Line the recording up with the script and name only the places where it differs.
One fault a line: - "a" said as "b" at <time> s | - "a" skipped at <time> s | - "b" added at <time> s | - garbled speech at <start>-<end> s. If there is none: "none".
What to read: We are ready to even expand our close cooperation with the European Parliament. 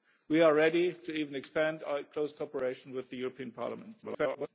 - garbled speech at 4.0-4.5 s